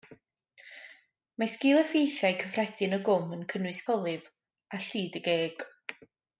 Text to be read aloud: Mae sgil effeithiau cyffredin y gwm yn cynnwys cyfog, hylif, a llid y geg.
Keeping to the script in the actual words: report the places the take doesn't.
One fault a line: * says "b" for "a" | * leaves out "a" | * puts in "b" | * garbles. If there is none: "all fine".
* leaves out "cyfog"